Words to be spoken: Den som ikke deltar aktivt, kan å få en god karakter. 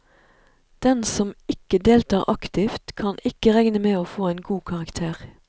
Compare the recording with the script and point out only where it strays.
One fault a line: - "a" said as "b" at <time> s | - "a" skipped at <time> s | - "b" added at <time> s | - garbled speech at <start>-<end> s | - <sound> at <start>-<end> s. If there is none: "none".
- "ikke regne med" added at 3.2 s